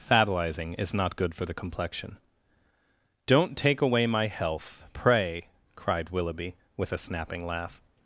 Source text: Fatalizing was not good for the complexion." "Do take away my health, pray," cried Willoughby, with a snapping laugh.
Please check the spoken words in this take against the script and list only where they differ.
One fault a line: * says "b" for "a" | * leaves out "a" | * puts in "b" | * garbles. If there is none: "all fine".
* says "is" for "was"
* says "Don't" for "Do"